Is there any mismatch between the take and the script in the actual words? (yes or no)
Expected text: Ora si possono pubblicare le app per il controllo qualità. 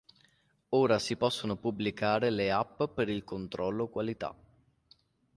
no